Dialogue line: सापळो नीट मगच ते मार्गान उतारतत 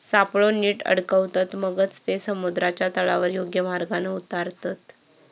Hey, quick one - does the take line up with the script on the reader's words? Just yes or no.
no